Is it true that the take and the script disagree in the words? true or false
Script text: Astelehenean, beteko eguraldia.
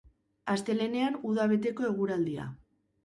true